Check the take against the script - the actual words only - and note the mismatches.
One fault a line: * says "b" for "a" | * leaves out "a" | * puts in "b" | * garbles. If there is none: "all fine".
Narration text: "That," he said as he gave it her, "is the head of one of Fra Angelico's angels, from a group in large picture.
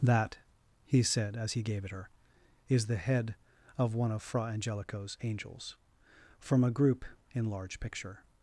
all fine